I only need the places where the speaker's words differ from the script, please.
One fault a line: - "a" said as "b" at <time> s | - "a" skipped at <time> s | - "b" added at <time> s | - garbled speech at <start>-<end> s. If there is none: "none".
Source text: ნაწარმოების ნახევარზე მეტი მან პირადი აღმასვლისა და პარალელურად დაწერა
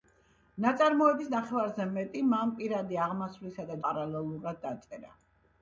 none